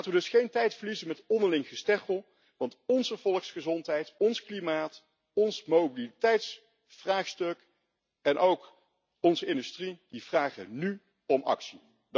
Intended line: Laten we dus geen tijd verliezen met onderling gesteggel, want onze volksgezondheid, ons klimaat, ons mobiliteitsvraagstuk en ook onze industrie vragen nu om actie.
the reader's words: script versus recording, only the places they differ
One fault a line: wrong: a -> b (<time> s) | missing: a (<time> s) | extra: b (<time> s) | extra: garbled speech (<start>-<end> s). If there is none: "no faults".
no faults